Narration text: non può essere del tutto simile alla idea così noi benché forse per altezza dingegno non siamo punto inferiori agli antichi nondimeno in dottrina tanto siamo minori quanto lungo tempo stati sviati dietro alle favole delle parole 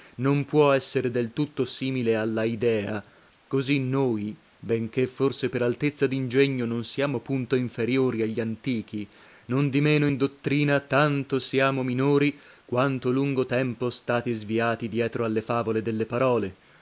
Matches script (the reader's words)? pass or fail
pass